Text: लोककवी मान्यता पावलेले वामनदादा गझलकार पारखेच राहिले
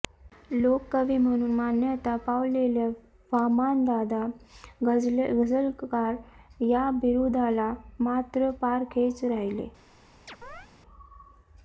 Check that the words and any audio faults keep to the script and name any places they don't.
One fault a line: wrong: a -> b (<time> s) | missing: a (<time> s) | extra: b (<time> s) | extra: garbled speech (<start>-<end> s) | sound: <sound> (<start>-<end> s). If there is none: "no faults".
extra: म्हणून (1.2 s)
extra: या बिरुदाला मात्र (6.6 s)
sound: chirp (10.3-10.7 s)